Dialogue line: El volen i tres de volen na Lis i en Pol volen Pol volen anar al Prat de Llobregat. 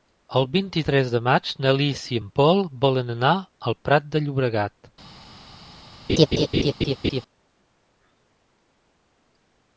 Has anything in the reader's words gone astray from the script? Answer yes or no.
yes